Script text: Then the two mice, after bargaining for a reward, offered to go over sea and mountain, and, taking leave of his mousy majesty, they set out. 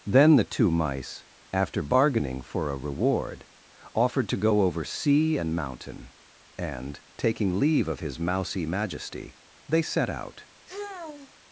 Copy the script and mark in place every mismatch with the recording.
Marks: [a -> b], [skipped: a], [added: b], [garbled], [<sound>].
Then the two mice, after bargaining for a reward, offered to go over sea and mountain, and, taking leave of his mousy majesty, they set out. [sigh]